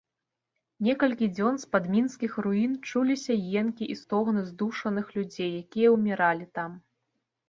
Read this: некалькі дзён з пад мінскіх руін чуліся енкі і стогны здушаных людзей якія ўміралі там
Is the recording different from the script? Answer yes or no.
no